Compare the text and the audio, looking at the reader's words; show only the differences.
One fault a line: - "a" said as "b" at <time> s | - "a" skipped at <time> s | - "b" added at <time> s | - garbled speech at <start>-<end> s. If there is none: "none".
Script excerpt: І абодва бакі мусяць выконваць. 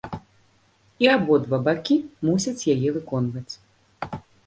- "яе" added at 2.8 s